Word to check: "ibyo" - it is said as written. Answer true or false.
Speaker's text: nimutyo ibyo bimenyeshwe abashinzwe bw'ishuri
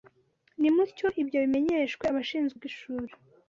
true